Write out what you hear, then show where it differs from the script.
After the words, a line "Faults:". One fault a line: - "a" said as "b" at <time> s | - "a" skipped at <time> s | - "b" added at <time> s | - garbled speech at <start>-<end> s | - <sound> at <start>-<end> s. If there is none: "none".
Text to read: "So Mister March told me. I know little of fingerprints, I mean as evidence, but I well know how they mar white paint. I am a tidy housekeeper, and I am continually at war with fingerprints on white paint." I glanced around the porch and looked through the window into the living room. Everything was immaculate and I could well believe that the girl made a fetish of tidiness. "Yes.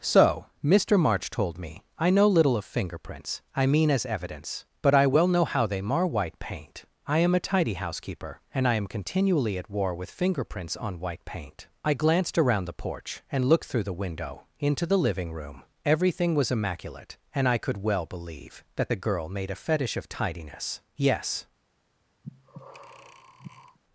"So Mister March told me. I know little of fingerprints, I mean as evidence, but I well know how they mar white paint. I am a tidy housekeeper, and I am continually at war with fingerprints on white paint." I glanced around the porch and looked through the window into the living room. Everything was immaculate and I could well believe that the girl made a fetish of tidiness. "Yes.
Faults:
- breath at 22.2-23.8 s